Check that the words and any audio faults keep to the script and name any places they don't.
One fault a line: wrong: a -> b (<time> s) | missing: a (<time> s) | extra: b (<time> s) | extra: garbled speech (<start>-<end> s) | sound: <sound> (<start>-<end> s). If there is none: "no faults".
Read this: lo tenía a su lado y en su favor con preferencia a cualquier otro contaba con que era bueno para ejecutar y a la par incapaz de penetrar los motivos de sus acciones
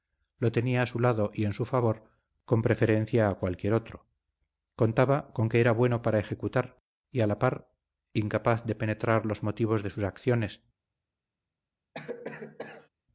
sound: cough (11.9-12.9 s)